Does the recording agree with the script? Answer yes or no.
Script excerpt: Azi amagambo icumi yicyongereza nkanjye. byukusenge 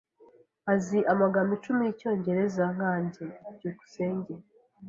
yes